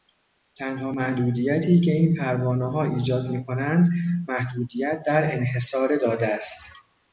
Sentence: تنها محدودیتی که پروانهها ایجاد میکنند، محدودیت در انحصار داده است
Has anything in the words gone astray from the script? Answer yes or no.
yes